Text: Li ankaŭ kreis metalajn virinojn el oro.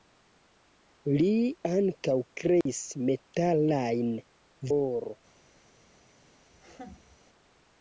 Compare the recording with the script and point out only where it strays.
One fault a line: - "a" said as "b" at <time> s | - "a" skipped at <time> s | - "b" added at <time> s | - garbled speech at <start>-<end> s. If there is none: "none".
- "virinojn el" skipped at 4.1 s